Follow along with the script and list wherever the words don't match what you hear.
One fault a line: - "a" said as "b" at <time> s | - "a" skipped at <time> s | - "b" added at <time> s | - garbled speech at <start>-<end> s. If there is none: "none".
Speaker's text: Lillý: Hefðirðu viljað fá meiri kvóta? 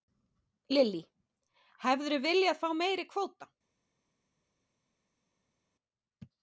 none